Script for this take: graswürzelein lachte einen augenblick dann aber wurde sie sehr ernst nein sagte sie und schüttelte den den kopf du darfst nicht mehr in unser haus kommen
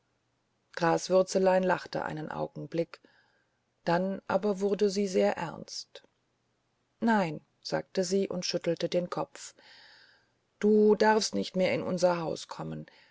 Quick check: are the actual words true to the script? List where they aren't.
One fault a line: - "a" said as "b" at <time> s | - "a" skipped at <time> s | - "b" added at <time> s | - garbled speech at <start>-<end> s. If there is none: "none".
- "den" skipped at 9.1 s